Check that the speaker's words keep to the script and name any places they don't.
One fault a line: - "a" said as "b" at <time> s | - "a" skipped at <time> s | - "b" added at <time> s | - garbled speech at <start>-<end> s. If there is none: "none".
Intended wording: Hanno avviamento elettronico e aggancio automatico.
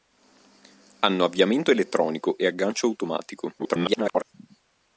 - garbled speech at 3.6-4.2 s